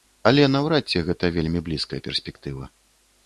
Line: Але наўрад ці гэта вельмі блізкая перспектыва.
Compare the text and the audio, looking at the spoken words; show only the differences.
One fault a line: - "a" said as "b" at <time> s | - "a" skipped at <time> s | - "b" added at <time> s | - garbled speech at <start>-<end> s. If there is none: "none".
none